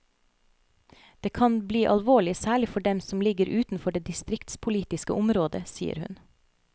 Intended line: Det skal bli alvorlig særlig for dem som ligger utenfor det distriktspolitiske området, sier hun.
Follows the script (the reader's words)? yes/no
no